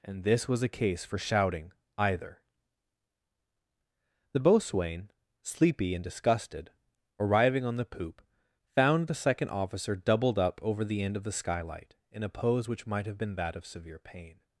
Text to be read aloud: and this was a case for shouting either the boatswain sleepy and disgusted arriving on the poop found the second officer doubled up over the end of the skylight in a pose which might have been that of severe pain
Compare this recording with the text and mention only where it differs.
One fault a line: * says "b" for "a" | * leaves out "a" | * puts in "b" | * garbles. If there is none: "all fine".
all fine